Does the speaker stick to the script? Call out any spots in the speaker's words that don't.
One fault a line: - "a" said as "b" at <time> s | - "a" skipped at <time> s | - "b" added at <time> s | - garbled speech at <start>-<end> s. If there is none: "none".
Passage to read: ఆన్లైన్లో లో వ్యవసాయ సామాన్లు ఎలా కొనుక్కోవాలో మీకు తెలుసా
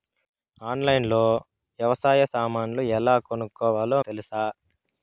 - "మీకు" skipped at 4.0 s